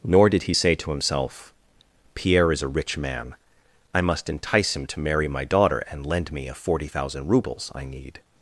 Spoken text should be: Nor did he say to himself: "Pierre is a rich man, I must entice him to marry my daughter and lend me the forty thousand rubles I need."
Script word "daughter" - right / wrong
right